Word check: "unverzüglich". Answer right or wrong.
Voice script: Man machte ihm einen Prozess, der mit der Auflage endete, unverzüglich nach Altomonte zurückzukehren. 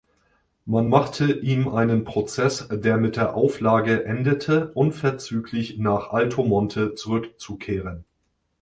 right